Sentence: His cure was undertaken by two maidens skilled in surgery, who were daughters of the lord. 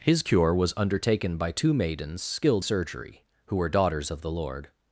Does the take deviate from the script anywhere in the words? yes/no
yes